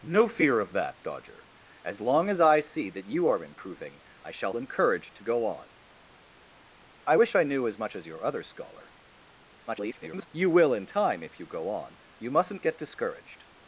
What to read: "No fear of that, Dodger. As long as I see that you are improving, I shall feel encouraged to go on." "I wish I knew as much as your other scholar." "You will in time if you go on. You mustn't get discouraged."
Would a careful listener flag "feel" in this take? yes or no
yes